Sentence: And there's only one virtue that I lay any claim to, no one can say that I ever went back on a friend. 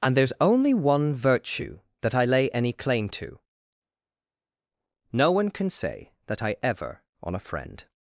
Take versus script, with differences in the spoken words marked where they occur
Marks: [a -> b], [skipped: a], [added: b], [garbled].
And there's only one virtue that I lay any claim to, no one can say that I ever [skipped: went back] on a friend.